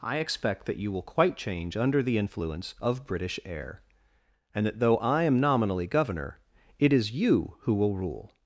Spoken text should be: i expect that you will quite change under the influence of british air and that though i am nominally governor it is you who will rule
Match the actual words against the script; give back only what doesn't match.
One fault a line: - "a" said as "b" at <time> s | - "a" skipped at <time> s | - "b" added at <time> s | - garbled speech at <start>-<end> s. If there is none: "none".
none